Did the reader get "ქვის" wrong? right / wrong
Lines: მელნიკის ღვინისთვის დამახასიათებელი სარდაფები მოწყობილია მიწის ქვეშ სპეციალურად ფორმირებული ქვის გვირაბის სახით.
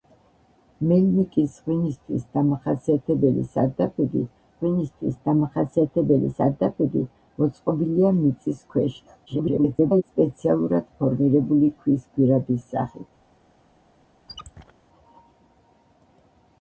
right